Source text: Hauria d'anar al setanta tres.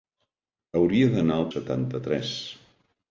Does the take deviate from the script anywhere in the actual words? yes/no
no